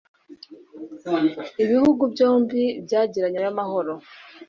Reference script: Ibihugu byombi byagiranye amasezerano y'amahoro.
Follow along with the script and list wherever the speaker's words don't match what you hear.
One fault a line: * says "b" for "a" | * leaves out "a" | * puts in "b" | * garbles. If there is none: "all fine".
* leaves out "amasezerano"